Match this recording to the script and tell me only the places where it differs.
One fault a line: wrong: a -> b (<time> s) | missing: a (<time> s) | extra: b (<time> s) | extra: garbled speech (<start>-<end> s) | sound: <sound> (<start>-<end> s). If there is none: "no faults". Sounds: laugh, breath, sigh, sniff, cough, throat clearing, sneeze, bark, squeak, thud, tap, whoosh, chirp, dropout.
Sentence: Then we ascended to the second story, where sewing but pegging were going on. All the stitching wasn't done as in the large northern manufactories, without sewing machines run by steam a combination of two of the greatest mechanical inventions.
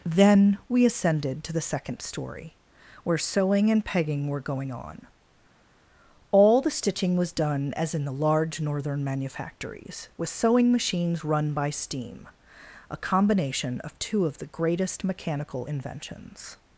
wrong: but -> and (3.7 s)
wrong: wasn't -> was (7.1 s)
wrong: without -> with (10.2 s)